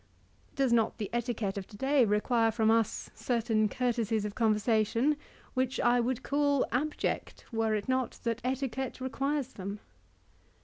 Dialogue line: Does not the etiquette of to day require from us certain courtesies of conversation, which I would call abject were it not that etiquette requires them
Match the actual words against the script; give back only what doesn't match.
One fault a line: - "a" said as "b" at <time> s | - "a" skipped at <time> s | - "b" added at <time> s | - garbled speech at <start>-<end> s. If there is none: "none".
none